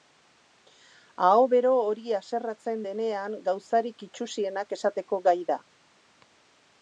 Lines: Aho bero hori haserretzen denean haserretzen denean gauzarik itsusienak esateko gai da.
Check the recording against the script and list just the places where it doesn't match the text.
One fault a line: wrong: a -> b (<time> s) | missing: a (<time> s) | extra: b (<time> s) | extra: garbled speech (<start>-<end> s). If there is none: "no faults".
missing: haserretzen denean (3.4 s)